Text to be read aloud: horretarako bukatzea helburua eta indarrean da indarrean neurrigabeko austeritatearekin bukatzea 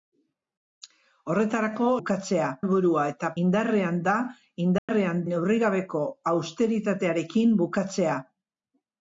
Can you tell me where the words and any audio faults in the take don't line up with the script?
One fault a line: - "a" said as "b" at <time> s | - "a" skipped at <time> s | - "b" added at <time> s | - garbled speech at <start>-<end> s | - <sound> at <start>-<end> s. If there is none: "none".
- dropout at 4.8-4.9 s